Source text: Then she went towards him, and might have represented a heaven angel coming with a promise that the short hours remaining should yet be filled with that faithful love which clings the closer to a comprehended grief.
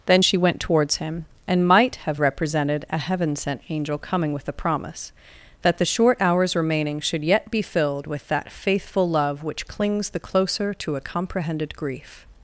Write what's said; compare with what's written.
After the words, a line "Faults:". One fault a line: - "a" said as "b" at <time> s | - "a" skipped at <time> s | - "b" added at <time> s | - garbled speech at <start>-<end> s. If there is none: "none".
Then she went towards him, and might have represented a heaven sent angel coming with a promise that the short hours remaining should yet be filled with that faithful love which clings the closer to a comprehended grief.
Faults:
- "sent" added at 3.4 s